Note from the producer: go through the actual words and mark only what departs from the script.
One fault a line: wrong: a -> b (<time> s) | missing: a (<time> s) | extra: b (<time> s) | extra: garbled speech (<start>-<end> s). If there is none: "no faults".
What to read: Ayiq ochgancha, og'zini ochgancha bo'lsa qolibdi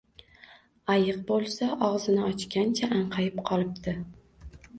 wrong: ochgancha -> bo'lsa (1.3 s)
wrong: bo'lsa -> anqayib (3.0 s)